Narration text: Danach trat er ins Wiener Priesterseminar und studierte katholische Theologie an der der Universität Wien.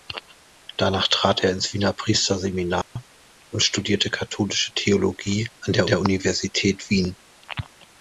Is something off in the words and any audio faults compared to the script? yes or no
yes